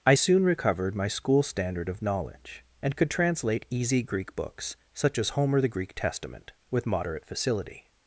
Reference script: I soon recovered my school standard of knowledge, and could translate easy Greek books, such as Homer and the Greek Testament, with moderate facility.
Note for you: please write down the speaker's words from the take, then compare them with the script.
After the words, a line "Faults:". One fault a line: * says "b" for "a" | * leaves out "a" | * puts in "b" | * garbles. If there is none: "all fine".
I soon recovered my school standard of knowledge, and could translate easy Greek books, such as Homer the Greek Testament, with moderate facility.
Faults:
* leaves out "and"